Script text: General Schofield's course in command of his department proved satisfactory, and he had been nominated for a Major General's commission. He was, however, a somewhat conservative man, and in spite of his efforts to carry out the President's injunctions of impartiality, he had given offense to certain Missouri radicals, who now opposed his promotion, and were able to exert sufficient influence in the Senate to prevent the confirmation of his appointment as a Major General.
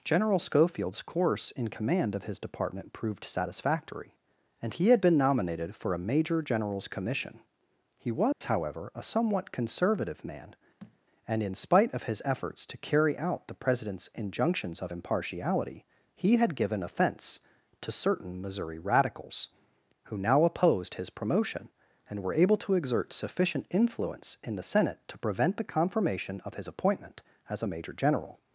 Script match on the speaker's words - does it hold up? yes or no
yes